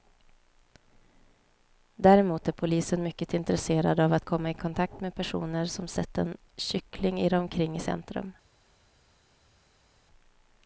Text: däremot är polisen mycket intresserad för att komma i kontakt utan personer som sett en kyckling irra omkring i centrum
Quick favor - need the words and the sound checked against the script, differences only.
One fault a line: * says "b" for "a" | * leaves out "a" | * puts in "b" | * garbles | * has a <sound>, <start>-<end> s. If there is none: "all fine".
* says "av" for "för"
* says "med" for "utan"